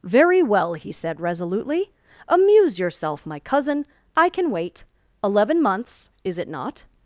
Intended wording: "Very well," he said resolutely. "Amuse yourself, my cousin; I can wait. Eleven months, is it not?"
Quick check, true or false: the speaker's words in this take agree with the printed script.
true